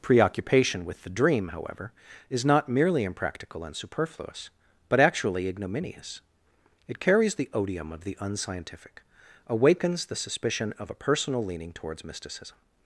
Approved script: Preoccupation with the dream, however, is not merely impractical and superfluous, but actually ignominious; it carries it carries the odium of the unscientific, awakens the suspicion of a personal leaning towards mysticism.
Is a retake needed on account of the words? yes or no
yes